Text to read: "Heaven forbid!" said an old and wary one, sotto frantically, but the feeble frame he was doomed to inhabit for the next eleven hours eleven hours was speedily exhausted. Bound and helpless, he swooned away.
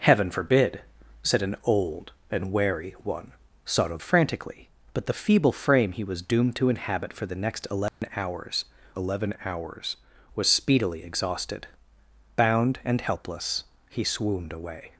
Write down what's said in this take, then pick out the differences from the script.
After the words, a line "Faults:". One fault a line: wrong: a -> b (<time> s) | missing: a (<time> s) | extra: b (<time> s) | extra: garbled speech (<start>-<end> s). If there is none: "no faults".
"Heaven forbid!" said an old and wary one, sotto frantically, but the feeble frame he was doomed to inhabit for the next eleven hours eleven hours was speedily exhausted. Bound and helpless, he swooned away.
Faults:
no faults